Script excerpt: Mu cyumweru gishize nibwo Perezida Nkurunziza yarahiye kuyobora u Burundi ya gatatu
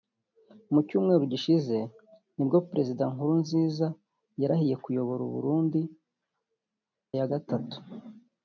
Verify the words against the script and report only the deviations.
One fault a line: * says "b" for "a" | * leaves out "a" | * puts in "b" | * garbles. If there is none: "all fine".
all fine